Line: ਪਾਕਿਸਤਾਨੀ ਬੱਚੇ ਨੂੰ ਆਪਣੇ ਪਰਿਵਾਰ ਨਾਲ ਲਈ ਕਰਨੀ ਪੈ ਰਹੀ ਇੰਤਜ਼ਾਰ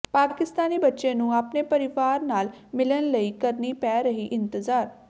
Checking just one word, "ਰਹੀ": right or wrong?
right